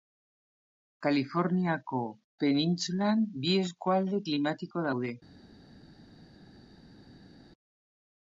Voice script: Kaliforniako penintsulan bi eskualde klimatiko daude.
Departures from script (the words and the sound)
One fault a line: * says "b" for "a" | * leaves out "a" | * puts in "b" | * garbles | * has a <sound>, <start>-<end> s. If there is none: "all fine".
all fine